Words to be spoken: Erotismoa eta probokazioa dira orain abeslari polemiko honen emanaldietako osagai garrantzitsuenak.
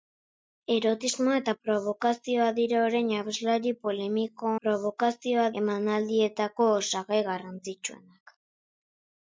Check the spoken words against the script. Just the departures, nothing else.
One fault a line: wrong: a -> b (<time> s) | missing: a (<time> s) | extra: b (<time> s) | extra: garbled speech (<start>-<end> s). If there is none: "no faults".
wrong: honen -> probokazioa (4.6 s)